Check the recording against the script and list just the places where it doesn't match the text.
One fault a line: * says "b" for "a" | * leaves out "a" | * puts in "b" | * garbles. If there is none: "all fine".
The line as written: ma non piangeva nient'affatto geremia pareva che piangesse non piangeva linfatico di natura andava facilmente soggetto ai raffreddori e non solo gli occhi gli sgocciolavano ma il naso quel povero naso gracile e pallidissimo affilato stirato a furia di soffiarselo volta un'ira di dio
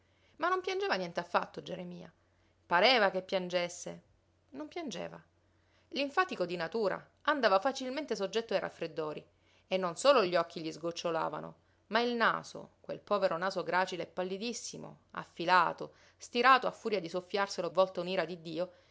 all fine